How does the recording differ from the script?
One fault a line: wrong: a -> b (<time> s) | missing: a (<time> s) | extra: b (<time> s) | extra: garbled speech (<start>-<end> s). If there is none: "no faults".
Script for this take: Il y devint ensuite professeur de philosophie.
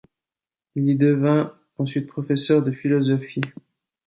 no faults